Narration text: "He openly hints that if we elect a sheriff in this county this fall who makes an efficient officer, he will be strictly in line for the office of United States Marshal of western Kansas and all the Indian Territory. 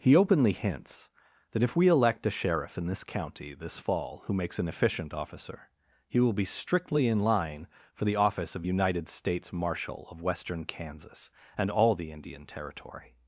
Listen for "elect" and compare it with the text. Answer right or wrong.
right